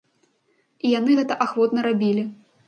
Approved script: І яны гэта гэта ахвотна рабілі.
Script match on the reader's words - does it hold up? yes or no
no